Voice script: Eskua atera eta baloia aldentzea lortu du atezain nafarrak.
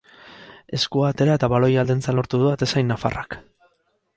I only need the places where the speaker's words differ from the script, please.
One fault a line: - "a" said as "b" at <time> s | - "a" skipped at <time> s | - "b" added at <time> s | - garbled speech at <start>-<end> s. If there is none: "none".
none